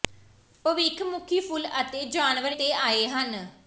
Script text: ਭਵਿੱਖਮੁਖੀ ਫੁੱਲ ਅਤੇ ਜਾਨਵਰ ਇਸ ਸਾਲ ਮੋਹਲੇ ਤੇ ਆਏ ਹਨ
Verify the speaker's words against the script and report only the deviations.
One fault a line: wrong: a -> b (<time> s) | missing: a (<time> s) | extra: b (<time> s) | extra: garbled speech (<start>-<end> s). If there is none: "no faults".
missing: ਇਸ ਸਾਲ ਮੋਹਲੇ (2.5 s)